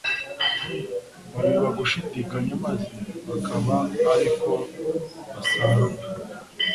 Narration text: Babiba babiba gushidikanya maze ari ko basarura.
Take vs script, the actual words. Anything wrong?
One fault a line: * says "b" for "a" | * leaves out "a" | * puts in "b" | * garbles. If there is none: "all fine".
* leaves out "babiba"
* puts in "bakaba"